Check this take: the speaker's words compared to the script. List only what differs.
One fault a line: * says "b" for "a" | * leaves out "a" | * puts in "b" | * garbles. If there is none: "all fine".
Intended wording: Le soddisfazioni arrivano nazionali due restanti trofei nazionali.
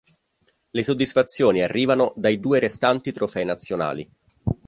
* says "dai" for "nazionali"